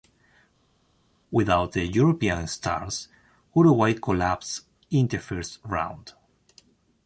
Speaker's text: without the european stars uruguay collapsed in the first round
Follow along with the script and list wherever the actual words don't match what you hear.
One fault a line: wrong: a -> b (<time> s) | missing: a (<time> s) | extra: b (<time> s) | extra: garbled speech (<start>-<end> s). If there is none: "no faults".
no faults